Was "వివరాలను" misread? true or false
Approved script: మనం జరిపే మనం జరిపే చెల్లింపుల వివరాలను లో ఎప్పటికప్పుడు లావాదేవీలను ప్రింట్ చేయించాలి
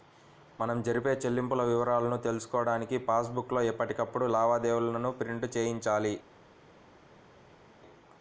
true